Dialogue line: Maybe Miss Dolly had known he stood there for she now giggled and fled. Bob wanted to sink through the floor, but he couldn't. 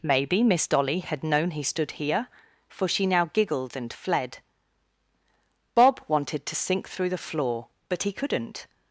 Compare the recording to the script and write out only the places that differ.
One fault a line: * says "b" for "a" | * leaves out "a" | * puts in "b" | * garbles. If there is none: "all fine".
* says "here" for "there"